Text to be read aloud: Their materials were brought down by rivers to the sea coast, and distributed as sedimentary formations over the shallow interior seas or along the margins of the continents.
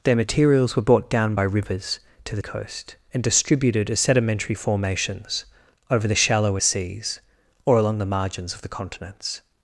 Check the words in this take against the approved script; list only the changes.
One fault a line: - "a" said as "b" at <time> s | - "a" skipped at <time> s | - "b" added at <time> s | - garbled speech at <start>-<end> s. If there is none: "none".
- "sea" skipped at 2.4 s
- "interior" skipped at 6.6 s